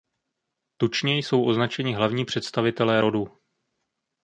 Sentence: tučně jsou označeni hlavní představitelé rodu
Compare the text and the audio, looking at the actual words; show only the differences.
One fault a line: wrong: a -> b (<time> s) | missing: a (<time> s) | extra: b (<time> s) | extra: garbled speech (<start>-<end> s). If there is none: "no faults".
no faults